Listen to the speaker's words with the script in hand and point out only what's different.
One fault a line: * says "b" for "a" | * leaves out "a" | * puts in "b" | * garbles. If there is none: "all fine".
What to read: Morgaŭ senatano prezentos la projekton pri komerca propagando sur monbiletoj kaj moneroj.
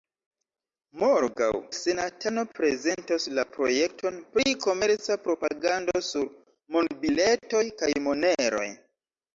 all fine